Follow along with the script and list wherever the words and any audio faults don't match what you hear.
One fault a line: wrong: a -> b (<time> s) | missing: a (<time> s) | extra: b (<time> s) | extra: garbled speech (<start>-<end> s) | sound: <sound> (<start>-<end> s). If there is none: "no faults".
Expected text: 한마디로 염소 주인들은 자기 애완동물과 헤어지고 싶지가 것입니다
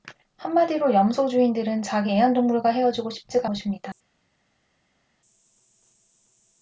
no faults